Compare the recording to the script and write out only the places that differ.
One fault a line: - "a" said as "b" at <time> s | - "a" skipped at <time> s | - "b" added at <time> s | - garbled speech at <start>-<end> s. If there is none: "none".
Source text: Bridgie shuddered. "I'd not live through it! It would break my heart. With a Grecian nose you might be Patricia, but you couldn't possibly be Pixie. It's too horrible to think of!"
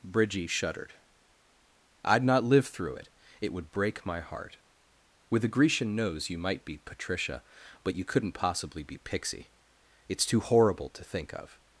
none